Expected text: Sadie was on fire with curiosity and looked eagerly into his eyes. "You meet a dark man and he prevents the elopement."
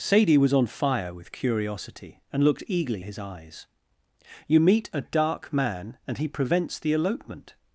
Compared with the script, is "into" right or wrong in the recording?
wrong